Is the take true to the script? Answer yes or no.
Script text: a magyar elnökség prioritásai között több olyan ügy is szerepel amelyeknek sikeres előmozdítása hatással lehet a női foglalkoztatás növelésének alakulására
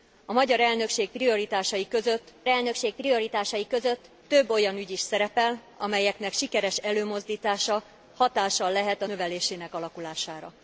no